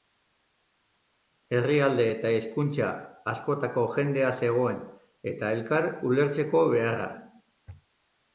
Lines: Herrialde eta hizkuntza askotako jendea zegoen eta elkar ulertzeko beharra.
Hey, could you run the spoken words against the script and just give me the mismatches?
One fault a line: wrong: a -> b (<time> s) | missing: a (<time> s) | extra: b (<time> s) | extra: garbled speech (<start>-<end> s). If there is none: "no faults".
no faults